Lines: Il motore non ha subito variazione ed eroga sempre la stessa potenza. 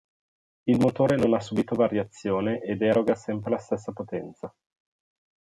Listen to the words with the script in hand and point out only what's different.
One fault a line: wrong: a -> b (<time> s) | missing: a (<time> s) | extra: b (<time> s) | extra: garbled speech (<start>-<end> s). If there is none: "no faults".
no faults